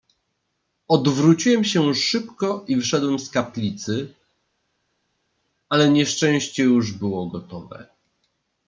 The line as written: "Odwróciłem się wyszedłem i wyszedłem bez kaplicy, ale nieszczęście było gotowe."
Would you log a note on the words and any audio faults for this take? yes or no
yes